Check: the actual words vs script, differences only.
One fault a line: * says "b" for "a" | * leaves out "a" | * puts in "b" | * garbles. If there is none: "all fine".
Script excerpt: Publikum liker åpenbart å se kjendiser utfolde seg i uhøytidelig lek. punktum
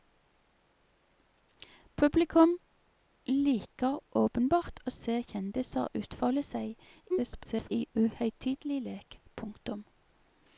* garbles